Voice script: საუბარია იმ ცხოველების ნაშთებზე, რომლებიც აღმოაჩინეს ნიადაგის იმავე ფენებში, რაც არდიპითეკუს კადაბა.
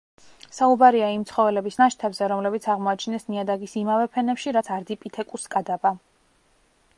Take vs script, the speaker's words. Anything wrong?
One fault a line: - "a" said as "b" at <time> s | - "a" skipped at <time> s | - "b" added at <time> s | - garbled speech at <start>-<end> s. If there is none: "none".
none